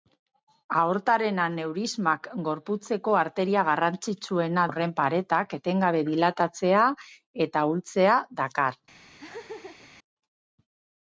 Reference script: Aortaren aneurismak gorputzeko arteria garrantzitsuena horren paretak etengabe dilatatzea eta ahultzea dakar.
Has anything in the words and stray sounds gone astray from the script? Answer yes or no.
yes